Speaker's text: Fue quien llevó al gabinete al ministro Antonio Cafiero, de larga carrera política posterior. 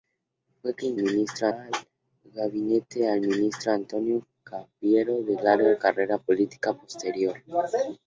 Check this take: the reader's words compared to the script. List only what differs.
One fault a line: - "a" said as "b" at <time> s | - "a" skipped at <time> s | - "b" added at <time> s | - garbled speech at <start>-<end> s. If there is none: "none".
- "llevó" said as "ministro" at 0.9 s